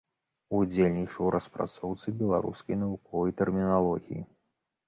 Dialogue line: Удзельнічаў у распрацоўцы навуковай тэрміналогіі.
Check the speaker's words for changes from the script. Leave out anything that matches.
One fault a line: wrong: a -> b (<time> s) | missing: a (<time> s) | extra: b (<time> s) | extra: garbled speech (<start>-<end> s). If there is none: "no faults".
extra: беларускай (2.2 s)